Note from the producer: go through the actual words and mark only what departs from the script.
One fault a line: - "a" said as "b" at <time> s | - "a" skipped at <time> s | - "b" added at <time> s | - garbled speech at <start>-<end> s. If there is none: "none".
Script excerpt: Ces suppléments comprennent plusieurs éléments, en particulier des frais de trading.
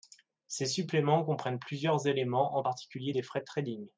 none